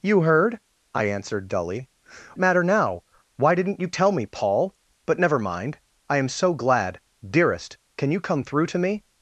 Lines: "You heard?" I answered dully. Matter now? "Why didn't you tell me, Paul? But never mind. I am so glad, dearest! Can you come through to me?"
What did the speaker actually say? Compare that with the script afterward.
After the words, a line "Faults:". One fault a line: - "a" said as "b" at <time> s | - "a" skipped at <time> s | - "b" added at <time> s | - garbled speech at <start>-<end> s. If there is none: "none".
"You heard?" I answered dully. Matter now? "Why didn't you tell me, Paul? But never mind. I am so glad, dearest! Can you come through to me?"
Faults:
none